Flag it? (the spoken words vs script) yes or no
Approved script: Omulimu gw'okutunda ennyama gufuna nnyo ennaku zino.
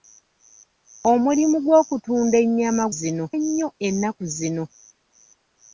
yes